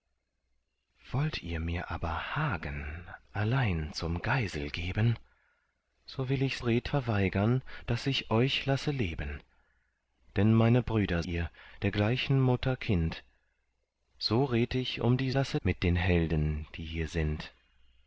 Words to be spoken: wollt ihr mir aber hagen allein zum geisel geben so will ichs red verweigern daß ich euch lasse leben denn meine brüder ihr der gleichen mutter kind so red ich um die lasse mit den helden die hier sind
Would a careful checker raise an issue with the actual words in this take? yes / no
no